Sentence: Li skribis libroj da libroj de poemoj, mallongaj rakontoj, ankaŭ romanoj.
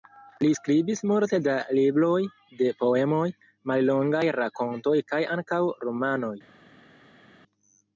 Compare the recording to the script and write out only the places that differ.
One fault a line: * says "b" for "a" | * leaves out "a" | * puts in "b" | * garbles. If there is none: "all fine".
* says "multe" for "libroj"
* puts in "kaj"